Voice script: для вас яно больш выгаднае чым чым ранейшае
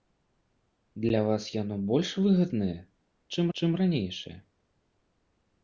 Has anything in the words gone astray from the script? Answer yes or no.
no